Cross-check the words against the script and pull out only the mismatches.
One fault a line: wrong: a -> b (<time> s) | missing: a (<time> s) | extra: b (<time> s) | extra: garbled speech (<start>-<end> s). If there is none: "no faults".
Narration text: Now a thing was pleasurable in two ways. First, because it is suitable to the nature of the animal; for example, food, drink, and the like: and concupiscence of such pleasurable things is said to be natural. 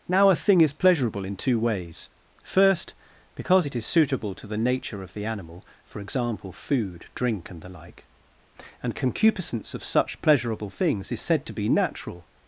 wrong: was -> is (0.6 s)